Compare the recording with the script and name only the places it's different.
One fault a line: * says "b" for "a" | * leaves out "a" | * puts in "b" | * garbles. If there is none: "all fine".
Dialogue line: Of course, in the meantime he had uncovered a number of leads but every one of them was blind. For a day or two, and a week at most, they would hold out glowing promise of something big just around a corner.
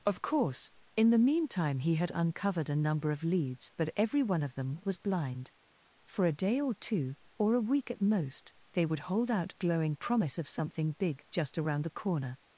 * says "or" for "and"
* says "the" for "a"